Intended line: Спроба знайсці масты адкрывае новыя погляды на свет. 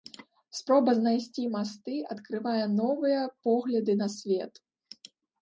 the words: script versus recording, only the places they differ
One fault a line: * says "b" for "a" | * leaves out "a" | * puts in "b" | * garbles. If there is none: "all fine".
all fine